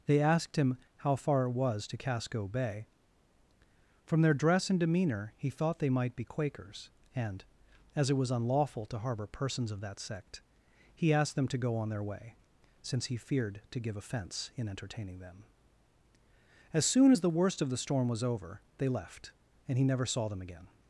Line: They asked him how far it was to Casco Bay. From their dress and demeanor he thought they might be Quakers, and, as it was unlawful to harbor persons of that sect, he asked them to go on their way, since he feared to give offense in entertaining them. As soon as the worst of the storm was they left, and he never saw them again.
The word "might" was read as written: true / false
true